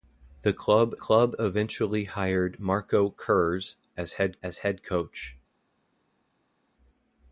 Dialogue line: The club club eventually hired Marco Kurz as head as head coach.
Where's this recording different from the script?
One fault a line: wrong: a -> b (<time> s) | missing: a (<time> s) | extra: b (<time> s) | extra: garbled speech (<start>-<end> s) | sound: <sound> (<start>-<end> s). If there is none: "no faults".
no faults